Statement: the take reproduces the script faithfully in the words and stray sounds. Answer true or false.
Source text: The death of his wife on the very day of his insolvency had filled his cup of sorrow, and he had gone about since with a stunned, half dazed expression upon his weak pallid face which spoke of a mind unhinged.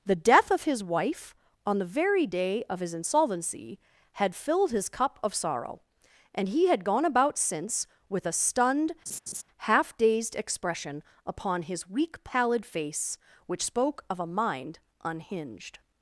false